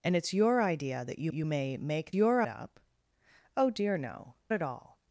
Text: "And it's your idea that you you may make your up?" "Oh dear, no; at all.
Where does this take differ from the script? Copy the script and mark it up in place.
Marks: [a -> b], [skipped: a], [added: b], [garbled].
"And it's your idea that you you may make your up?" "Oh dear, no; at all.